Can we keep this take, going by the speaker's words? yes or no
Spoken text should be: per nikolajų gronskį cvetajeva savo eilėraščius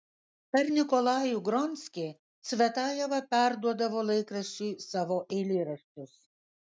no